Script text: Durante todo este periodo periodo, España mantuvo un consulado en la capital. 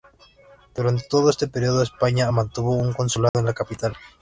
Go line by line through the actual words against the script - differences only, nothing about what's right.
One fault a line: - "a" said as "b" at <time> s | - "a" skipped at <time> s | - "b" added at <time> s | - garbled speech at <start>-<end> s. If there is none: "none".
- "periodo" skipped at 1.8 s